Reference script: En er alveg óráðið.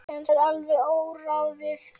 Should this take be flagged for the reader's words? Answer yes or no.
no